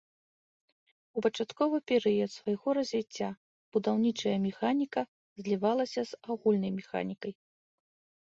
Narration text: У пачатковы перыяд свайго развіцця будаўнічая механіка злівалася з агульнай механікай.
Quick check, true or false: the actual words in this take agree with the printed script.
true